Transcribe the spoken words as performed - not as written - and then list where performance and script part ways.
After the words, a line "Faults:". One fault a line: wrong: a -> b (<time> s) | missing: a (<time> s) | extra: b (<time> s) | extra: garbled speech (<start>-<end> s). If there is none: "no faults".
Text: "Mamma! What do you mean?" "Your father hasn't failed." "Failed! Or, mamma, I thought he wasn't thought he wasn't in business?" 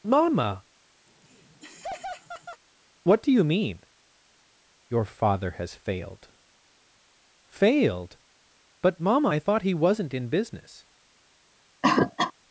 "Mamma! What do you mean?" "Your father has failed." "Failed! But, mamma, I thought he wasn't in business?"
Faults:
wrong: hasn't -> has (5.5 s)
wrong: Or -> But (8.8 s)
missing: thought he wasn't (10.1 s)